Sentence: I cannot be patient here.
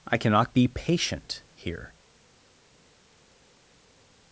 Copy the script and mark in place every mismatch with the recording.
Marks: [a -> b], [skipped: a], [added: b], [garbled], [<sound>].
I cannot be patient here.